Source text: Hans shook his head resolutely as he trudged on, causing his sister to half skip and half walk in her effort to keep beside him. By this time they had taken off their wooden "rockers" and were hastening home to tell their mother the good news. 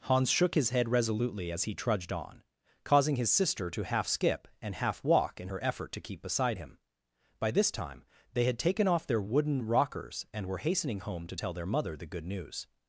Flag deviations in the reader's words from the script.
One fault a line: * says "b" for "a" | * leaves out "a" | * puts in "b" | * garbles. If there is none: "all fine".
all fine